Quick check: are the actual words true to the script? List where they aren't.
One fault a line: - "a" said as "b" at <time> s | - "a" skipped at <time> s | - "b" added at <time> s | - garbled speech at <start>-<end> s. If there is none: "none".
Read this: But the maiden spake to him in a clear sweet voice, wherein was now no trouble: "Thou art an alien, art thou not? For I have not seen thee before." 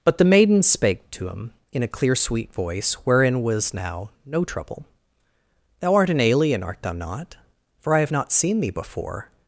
none